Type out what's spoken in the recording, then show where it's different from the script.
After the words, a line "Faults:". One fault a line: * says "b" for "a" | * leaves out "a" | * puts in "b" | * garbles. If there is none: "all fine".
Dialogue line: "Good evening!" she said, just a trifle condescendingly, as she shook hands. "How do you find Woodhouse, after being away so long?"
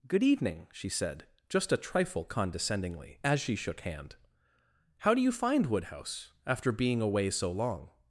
"Good evening!" she said, just a trifle condescendingly, as she shook hand. "How do you find Woodhouse, after being away so long?"
Faults:
* says "hand" for "hands"